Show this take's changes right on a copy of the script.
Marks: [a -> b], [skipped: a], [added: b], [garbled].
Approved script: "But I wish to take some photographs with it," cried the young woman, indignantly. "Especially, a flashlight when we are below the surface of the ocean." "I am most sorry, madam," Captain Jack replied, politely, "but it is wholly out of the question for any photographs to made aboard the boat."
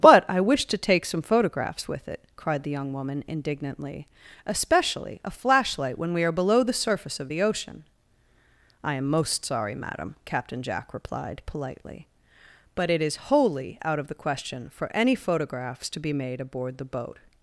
"But I wish to take some photographs with it," cried the young woman, indignantly. "Especially, a flashlight when we are below the surface of the ocean." "I am most sorry, madam," Captain Jack replied, politely, "but it is wholly out of the question for any photographs to [added: be] made aboard the boat."